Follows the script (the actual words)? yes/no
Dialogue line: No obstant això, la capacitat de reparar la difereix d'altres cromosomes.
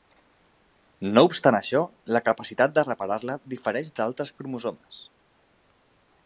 yes